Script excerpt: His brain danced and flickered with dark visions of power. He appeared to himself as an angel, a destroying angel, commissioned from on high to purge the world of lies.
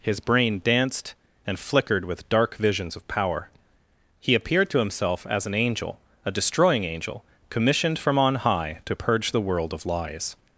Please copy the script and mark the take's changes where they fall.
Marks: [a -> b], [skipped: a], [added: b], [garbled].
His brain danced and flickered with dark visions of power. He appeared to himself as an angel, a destroying angel, commissioned from on high to purge the world of lies.